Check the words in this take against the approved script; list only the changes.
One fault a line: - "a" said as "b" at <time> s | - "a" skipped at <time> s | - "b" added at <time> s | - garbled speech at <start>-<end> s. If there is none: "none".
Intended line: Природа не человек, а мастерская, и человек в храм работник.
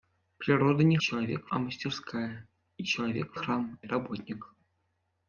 none